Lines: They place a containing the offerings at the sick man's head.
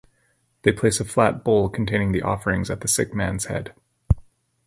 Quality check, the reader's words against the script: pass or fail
fail